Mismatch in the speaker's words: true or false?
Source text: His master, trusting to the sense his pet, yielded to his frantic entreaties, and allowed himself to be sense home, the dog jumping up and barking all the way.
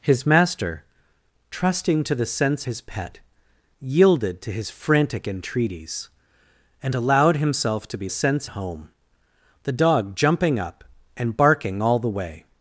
false